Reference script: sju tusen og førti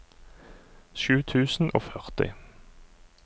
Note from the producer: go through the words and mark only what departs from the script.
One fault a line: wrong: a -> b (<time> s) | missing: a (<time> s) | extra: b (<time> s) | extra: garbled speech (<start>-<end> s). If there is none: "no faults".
no faults